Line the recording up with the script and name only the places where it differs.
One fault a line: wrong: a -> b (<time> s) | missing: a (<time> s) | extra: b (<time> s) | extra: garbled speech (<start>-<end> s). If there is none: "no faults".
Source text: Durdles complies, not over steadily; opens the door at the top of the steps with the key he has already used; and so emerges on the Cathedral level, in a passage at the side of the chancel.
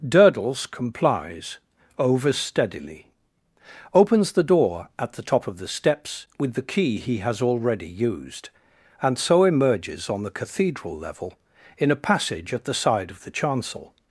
missing: not (1.6 s)